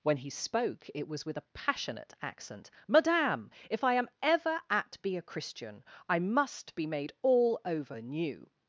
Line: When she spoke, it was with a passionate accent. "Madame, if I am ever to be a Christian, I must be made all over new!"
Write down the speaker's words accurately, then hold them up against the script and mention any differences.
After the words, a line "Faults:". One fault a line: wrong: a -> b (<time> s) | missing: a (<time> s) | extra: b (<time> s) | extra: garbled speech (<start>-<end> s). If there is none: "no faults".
When he spoke, it was with a passionate accent. "Madame, if I am ever at be a Christian, I must be made all over new!"
Faults:
wrong: she -> he (0.2 s)
wrong: to -> at (4.7 s)